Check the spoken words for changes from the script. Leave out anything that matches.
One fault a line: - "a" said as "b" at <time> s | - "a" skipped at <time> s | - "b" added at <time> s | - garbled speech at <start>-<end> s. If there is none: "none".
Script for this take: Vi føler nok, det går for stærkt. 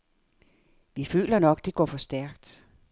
none